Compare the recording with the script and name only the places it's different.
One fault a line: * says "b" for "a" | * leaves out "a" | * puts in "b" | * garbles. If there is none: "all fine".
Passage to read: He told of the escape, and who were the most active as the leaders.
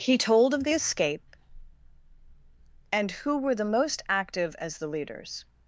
all fine